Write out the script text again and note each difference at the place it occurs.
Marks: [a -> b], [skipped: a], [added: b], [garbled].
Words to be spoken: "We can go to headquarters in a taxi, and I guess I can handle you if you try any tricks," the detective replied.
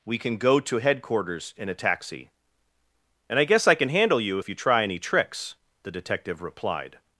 "We can go to headquarters in a taxi, and I guess I can handle you if you try any tricks," the detective replied.